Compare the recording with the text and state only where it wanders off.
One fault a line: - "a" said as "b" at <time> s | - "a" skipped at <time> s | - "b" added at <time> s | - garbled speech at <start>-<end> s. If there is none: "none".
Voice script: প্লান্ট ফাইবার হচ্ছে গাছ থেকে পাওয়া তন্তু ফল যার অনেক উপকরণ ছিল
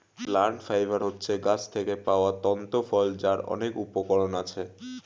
- "ছিল" said as "আছে" at 4.4 s